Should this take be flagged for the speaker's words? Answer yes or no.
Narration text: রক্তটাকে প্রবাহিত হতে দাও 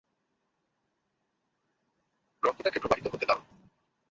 no